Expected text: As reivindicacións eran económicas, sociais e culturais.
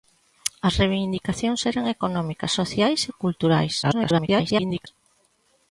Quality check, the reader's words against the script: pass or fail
fail